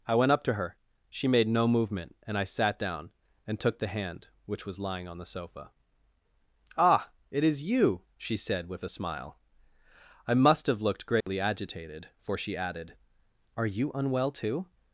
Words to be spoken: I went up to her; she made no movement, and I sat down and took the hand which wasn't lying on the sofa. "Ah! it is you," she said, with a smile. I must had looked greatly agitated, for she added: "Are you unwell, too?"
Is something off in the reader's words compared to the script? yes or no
yes